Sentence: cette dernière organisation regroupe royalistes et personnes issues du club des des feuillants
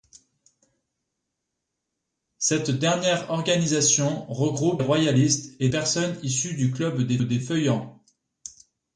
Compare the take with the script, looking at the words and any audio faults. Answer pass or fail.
pass